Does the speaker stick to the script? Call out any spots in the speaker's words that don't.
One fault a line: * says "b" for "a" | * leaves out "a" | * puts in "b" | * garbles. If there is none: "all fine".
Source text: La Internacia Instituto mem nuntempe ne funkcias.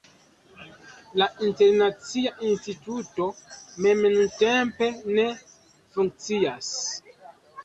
all fine